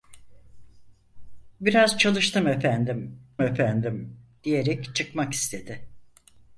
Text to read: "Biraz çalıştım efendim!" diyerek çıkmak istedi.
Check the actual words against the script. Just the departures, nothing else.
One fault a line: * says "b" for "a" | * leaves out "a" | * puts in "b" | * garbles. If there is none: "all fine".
* puts in "efendim"